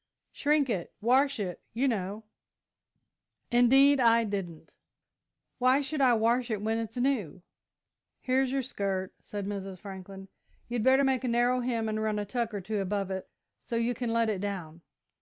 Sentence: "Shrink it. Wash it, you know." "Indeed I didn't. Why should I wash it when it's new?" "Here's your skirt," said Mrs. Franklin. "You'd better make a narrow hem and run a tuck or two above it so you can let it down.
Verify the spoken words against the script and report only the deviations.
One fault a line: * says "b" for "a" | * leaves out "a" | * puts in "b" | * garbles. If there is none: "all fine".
all fine